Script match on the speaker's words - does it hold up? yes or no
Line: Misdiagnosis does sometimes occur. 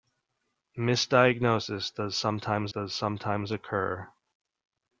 no